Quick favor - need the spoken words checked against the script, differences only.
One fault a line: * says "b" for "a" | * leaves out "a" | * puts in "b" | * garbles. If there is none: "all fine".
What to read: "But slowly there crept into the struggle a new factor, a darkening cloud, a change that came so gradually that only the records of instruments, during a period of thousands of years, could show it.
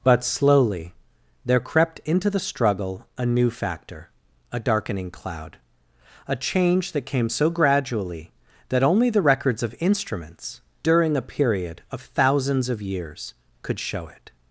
all fine